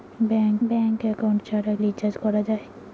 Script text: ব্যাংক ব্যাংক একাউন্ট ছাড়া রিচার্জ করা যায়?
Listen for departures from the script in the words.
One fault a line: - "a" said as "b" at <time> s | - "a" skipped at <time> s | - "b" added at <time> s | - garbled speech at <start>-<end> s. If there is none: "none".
none